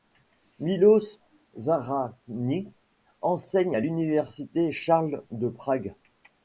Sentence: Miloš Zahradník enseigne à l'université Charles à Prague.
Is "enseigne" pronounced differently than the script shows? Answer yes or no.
no